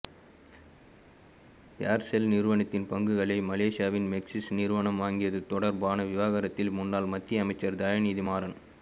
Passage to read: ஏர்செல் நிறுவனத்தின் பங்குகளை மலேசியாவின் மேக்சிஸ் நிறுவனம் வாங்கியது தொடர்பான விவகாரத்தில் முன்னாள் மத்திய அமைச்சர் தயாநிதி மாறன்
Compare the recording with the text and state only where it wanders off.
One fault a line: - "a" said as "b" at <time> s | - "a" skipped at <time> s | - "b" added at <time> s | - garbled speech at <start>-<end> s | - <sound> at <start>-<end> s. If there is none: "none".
none